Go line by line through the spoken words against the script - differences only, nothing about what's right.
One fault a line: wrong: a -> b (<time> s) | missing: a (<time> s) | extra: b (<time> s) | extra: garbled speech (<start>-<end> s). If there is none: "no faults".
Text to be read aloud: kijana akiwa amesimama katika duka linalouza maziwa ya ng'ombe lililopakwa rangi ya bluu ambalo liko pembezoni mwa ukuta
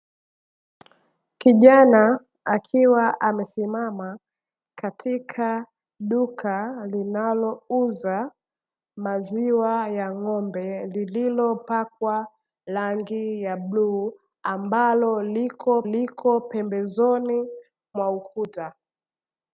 extra: liko (15.8 s)